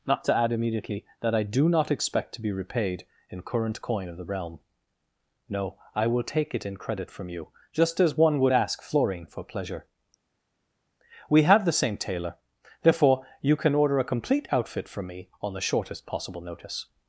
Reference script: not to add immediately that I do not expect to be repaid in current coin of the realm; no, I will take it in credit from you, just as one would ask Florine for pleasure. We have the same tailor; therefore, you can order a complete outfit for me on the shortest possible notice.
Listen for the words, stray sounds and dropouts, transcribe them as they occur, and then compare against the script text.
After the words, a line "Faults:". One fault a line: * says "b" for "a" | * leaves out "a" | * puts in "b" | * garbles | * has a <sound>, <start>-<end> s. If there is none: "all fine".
not to add immediately that I do not expect to be repaid in current coin of the realm; no, I will take it in credit from you, just as one would ask Florine for pleasure. We have the same tailor; therefore, you can order a complete outfit from me on the shortest possible notice.
Faults:
* says "from" for "for"